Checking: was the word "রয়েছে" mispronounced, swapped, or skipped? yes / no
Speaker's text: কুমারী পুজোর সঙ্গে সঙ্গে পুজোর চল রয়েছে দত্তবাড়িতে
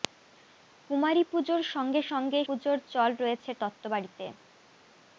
no